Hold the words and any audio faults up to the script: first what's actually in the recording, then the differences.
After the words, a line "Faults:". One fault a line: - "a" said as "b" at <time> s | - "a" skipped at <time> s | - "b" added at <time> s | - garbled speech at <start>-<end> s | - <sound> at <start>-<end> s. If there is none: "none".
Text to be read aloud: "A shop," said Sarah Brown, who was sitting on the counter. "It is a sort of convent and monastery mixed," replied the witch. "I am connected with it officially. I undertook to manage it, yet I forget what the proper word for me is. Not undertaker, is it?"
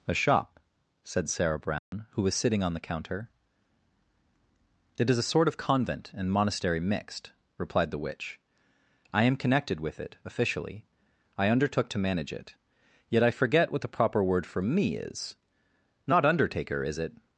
"A shop," said Sarah Brown, who was sitting on the counter. "It is a sort of convent and monastery mixed," replied the witch. "I am connected with it officially. I undertook to manage it, yet I forget what the proper word for me is. Not undertaker, is it?"
Faults:
- dropout at 1.8-1.9 s